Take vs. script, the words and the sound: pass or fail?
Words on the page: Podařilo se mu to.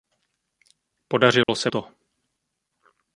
fail